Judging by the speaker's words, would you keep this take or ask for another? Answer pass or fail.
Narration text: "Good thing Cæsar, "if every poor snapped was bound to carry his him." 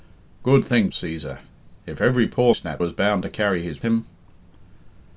pass